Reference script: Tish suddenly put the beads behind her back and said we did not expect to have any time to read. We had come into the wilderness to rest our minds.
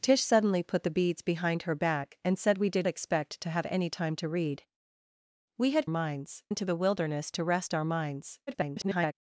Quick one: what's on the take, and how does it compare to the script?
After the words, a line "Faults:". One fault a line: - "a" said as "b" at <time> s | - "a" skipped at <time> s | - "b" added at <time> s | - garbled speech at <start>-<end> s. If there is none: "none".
Tish suddenly put the beads behind her back and said we did expect to have any time to read. We had minds into the wilderness to rest our minds. [garbled]
Faults:
- "not" skipped at 2.9 s
- "come" said as "minds" at 5.9 s
- garbled speech at 8.5-9.1 s